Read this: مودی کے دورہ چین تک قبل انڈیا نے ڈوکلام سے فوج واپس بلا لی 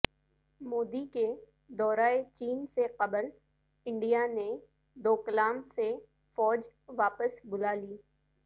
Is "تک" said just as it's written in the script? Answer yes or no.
no